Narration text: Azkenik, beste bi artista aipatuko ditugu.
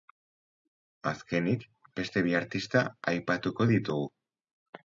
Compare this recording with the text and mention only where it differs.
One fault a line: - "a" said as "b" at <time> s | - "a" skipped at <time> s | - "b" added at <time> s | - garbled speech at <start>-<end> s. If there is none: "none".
none